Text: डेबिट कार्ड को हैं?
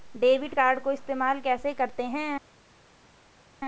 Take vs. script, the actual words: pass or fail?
fail